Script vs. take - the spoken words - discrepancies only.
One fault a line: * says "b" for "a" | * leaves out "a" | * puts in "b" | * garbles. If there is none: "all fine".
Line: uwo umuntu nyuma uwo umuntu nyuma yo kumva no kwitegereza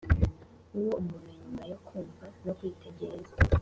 * leaves out "uwo umuntu nyuma"